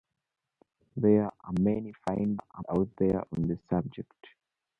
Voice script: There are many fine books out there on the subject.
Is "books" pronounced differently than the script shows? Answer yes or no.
yes